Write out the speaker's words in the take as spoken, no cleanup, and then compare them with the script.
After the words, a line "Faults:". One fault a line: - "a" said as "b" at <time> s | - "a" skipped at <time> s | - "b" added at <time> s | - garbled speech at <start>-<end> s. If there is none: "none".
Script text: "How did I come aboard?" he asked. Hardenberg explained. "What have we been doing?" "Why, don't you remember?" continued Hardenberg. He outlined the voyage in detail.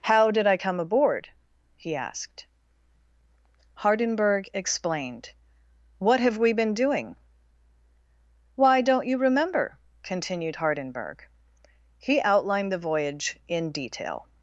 "How did I come aboard?" he asked. Hardenberg explained. "What have we been doing?" "Why, don't you remember?" continued Hardenberg. He outlined the voyage in detail.
Faults:
none